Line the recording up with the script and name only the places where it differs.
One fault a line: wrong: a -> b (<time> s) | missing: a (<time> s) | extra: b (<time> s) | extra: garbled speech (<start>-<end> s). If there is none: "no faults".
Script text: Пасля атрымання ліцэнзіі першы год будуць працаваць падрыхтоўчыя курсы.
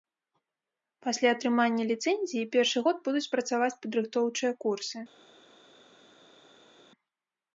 no faults